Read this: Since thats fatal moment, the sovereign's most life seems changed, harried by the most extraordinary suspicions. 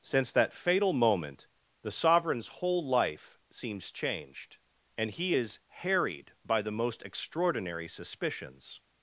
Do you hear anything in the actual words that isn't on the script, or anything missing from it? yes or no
yes